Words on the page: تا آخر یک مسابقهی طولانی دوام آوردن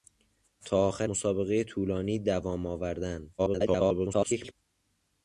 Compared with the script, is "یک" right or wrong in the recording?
wrong